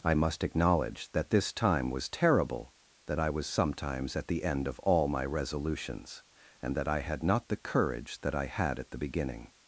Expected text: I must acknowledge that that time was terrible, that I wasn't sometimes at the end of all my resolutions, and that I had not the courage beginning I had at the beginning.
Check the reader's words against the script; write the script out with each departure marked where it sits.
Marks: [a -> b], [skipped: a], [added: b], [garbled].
I must acknowledge that [that -> this] time was terrible, that I [wasn't -> was] sometimes at the end of all my resolutions, and that I had not the courage [beginning -> that] I had at the beginning.